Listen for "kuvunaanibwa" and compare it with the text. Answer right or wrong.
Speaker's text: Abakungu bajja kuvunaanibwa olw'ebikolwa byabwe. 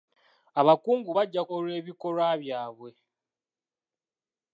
wrong